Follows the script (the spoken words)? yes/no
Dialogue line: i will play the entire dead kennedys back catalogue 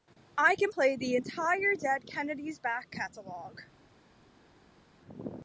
no